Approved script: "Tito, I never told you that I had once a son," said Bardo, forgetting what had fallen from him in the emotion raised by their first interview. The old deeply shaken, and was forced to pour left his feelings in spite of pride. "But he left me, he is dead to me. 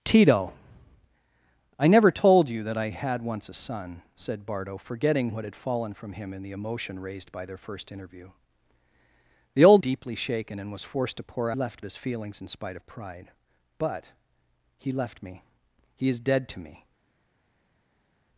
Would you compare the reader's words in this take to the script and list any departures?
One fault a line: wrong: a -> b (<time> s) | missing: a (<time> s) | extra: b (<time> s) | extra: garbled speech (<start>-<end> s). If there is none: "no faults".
no faults